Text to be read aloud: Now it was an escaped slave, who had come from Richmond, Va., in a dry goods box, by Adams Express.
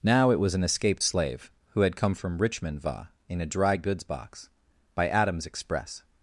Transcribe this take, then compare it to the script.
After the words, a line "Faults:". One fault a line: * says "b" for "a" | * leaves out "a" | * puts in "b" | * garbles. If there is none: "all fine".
Now it was an escaped slave, who had come from Richmond, Va., in a dry goods box, by Adams Express.
Faults:
all fine